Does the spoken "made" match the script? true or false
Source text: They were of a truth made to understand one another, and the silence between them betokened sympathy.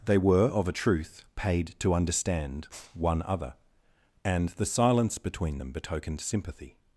false